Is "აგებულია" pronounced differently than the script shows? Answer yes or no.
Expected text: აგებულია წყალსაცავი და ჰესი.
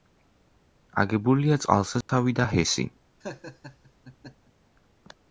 no